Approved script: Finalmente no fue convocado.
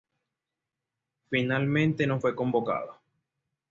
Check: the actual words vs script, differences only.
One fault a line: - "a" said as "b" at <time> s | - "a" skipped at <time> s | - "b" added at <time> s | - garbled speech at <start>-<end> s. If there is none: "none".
none